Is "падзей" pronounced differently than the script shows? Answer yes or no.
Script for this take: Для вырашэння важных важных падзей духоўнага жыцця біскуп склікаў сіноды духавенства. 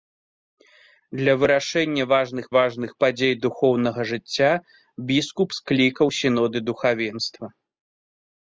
no